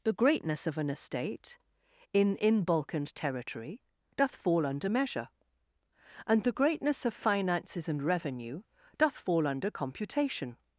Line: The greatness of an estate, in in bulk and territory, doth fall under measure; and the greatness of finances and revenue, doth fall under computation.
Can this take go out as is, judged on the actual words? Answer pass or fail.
pass